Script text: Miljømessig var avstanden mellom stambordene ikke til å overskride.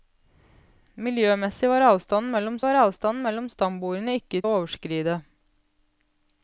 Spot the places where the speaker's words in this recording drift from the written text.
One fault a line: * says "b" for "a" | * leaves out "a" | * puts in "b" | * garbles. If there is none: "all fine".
* puts in "var avstanden mellom"
* leaves out "til"